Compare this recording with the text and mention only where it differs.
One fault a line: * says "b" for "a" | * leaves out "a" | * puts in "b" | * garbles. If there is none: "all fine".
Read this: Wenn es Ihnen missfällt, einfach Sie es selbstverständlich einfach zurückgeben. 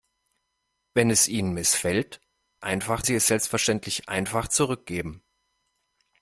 all fine